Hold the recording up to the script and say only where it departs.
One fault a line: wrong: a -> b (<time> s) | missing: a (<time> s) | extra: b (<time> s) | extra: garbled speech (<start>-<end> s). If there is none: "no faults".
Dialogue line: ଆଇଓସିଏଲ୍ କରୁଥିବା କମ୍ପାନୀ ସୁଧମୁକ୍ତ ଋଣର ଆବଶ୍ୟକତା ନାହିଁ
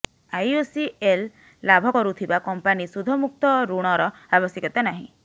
extra: ଲାଭ (1.6 s)